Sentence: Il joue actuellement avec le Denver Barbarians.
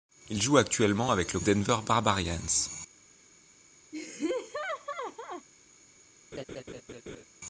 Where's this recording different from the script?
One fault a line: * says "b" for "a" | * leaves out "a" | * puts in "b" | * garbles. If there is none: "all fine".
all fine